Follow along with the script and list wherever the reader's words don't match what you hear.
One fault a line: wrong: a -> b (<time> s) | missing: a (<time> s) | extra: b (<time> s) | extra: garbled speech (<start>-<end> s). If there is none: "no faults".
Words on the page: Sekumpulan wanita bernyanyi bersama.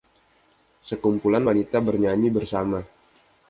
no faults